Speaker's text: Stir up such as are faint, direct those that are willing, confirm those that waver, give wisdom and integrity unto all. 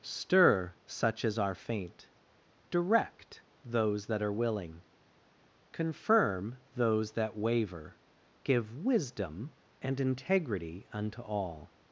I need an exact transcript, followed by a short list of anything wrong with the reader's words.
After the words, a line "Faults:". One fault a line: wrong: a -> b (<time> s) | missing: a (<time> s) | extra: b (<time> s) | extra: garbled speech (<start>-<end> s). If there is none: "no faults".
Stir such as are faint, direct those that are willing, confirm those that waver, give wisdom and integrity unto all.
Faults:
missing: up (0.7 s)